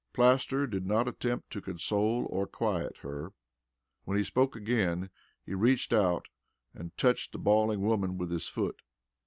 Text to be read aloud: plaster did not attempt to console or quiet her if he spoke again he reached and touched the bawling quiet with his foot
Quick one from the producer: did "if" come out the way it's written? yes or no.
no